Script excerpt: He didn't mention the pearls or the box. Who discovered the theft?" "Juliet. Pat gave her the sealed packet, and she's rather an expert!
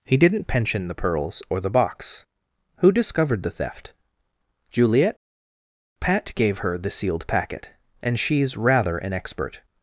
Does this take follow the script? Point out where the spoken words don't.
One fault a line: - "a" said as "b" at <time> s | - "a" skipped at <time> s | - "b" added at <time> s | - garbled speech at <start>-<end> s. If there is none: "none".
- "mention" said as "pension" at 0.5 s